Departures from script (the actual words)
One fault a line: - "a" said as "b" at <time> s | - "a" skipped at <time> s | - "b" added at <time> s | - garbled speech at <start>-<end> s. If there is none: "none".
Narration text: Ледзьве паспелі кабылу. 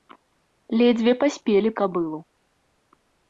none